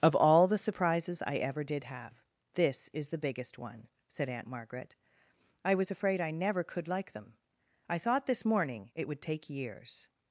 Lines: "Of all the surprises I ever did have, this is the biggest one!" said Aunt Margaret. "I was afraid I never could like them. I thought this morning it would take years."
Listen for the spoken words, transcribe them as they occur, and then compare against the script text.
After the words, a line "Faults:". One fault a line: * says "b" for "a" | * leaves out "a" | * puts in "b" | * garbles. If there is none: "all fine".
"Of all the surprises I ever did have, this is the biggest one!" said Aunt Margaret. "I was afraid I never could like them. I thought this morning it would take years."
Faults:
all fine